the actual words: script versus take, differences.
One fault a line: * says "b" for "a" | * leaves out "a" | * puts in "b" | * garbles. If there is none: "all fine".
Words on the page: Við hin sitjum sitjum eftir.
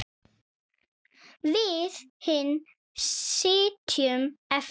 * leaves out "sitjum"